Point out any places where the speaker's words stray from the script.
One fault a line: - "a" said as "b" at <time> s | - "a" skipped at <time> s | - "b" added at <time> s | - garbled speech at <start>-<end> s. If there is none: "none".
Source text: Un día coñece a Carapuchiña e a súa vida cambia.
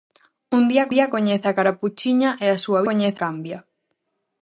- "día" added at 0.9 s
- "vida" said as "coñece" at 2.9 s